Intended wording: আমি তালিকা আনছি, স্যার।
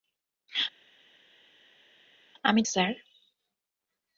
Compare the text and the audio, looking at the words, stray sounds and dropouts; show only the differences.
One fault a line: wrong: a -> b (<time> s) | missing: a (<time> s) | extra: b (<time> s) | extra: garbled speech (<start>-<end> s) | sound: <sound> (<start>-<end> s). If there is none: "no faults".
missing: তালিকা আনছি (2.6 s)